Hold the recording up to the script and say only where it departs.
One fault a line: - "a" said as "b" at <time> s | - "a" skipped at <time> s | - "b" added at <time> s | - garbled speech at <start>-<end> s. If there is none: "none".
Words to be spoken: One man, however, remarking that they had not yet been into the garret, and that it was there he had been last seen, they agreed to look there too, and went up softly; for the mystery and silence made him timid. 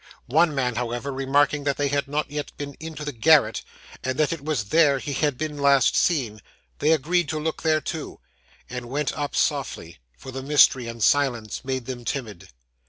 - "him" said as "them" at 11.9 s